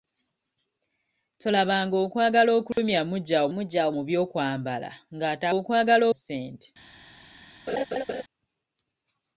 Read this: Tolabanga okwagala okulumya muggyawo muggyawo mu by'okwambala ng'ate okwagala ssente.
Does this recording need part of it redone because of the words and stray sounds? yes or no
yes